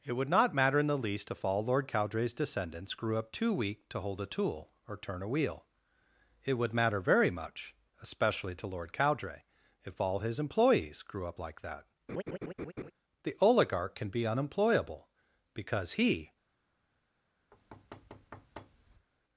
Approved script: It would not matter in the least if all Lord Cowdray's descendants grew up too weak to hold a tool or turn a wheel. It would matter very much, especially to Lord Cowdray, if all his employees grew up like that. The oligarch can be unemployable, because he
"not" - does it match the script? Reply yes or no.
yes